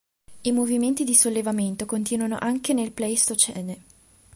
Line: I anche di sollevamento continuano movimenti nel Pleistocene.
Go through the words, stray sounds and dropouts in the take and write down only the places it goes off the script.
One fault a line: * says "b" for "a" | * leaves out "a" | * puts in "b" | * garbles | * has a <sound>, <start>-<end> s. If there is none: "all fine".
* says "movimenti" for "anche"
* says "anche" for "movimenti"